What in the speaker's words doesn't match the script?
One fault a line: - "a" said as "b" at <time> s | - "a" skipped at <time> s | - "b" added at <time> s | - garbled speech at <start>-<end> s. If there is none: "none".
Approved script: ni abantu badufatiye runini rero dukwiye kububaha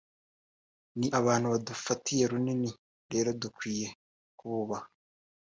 none